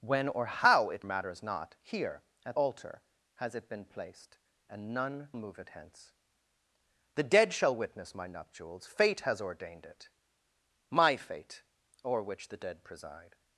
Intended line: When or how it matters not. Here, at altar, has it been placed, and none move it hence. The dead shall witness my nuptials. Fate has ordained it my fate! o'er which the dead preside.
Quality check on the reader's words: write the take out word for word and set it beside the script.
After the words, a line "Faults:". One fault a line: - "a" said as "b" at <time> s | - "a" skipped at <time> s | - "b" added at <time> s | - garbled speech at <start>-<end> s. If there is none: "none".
When or how it matters not. Here, at altar, has it been placed, and none move it hence. The dead shall witness my nuptials. Fate has ordained it my fate! o'er which the dead preside.
Faults:
none